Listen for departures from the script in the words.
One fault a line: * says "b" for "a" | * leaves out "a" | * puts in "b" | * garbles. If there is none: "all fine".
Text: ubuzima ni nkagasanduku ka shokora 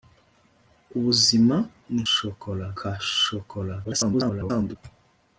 * says "shokora" for "nkagasanduku"
* garbles